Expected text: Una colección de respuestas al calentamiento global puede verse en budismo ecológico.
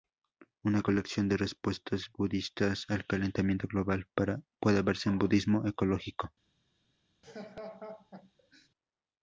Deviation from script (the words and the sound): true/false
true